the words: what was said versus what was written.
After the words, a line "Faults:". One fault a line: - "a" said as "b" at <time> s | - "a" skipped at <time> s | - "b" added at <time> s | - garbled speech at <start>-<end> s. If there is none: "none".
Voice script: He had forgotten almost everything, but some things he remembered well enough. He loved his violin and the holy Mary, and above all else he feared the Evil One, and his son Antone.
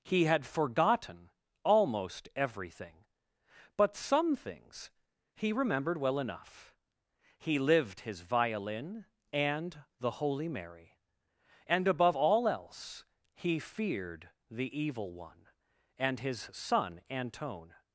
He had forgotten almost everything, but some things he remembered well enough. He lived his violin and the holy Mary, and above all else he feared the Evil One, and his son Antone.
Faults:
- "loved" said as "lived" at 7.6 s